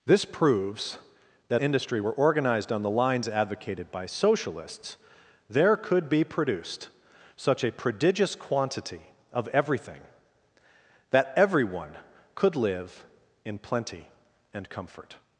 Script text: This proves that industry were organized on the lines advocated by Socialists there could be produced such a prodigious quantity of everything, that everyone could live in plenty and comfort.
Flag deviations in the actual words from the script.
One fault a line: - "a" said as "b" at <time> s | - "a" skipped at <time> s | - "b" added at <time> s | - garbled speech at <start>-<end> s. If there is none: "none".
none